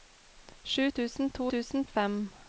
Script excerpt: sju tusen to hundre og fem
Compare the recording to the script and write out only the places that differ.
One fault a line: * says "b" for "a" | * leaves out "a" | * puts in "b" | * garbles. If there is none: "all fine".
* says "tusen" for "hundre"